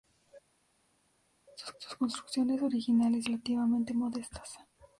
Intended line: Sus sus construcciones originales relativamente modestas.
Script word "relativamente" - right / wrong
right